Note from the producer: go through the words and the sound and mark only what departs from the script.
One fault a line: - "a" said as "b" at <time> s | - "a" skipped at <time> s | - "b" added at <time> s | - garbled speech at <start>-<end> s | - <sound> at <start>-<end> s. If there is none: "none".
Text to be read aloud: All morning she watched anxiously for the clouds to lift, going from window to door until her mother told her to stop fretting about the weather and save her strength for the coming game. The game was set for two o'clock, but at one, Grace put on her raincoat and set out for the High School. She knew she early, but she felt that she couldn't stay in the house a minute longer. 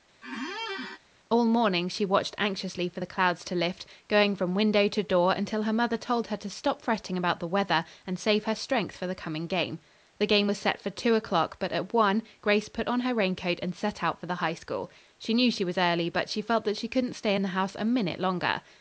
- squeak at 0.2-1.0 s
- "was" added at 15.6 s